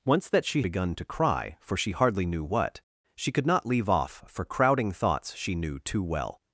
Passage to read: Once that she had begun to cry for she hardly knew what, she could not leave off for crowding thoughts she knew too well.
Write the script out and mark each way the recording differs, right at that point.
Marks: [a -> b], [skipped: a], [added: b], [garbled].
Once that she [skipped: had] begun to cry for she hardly knew what, she could not leave off for crowding thoughts she knew too well.